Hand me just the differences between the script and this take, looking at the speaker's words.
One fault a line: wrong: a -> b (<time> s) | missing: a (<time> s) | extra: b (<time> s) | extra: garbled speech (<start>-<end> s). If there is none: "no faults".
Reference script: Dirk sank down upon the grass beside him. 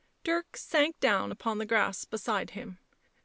no faults